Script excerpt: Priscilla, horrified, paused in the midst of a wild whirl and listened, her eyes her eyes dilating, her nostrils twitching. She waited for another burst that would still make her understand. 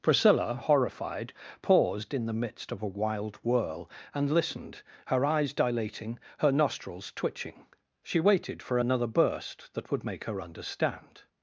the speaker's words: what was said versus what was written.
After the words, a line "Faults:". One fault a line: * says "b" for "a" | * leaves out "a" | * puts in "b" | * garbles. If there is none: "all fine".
Priscilla, horrified, paused in the midst of a wild whirl and listened, her eyes dilating, her nostrils twitching. She waited for another burst that would make her understand.
Faults:
* leaves out "her eyes"
* leaves out "still"